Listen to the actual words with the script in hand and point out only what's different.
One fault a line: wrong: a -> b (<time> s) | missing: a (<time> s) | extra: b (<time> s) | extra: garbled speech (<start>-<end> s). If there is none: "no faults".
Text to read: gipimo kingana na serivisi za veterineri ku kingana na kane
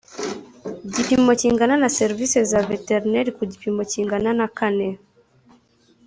extra: gipimo (3.5 s)